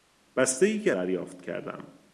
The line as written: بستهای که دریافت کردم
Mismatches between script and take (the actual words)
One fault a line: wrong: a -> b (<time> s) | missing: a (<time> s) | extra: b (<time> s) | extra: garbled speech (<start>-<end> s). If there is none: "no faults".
no faults